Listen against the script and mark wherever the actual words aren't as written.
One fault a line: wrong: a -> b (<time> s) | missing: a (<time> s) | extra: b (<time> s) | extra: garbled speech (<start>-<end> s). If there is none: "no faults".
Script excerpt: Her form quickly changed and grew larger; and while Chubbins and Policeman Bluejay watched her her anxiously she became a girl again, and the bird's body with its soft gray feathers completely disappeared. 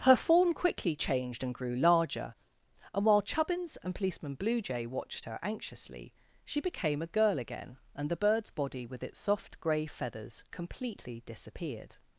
missing: her (5.4 s)